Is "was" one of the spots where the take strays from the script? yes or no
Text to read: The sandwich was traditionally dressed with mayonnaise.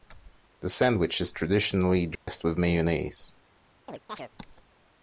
yes